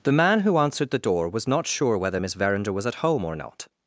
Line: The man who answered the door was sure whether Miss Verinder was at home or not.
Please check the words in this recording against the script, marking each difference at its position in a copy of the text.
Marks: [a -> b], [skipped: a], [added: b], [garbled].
The man who answered the door was [added: not] sure whether Miss Verinder was at home or not.